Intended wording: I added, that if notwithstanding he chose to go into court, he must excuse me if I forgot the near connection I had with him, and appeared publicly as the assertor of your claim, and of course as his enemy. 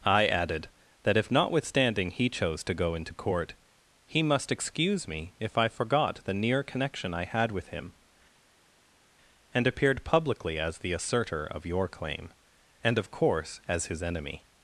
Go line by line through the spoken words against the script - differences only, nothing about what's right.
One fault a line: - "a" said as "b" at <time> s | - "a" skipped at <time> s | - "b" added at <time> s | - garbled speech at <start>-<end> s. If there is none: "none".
none